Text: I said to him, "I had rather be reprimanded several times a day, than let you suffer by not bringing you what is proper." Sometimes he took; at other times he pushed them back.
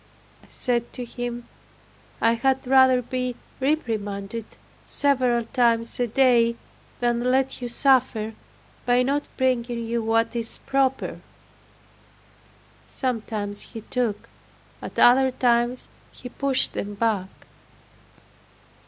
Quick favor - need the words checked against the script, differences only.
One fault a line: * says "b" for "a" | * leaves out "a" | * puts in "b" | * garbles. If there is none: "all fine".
all fine